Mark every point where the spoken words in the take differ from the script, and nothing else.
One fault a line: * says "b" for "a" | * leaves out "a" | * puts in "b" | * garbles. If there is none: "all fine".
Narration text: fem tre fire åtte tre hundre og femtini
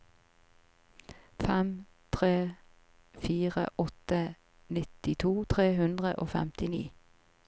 * puts in "nittito"